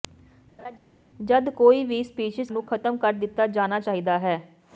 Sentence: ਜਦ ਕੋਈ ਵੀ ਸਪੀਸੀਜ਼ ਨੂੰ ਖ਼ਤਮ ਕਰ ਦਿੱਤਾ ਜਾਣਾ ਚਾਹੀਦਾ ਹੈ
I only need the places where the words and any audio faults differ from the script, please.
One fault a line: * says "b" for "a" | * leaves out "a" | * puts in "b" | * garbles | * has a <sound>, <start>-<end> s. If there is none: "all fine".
* has a laugh, 0.6-0.8 s